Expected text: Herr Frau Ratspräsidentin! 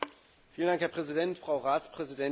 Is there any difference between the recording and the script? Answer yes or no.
yes